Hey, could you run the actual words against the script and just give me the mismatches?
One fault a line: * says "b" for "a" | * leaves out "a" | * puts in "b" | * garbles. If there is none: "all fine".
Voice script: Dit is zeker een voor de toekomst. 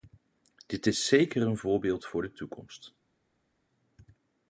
* puts in "voorbeeld"